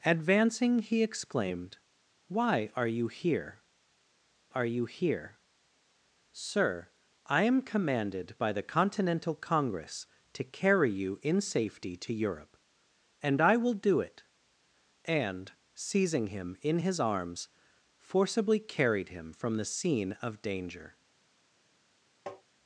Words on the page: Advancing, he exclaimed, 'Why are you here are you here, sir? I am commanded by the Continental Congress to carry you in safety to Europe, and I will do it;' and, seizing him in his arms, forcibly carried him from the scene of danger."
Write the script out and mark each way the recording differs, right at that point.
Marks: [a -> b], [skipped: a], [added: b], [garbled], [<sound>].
Advancing, he exclaimed, 'Why are you here are you here, sir? I am commanded by the Continental Congress to carry you in safety to Europe, and I will do it;' and, seizing him in his arms, forcibly carried him from the scene of danger." [tap]